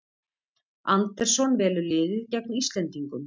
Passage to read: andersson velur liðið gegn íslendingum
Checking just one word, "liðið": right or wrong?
right